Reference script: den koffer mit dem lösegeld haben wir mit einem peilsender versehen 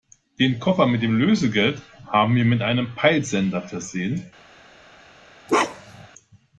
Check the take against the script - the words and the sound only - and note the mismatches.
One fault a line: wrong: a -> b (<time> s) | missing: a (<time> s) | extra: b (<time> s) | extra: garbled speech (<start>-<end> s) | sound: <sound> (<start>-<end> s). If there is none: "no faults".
sound: bark (5.5-6.1 s)